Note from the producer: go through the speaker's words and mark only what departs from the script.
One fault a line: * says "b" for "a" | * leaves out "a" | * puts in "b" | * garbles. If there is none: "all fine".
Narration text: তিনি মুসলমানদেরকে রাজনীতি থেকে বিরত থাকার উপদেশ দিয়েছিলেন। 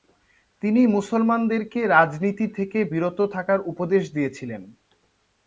all fine